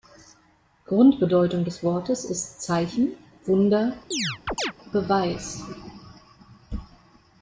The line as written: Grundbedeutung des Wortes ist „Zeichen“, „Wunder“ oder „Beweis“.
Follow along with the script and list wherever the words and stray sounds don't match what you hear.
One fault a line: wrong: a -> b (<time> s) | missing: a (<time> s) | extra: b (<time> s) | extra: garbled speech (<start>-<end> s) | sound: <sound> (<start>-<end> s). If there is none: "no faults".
missing: oder (3.9 s)
sound: chirp (4.1-4.7 s)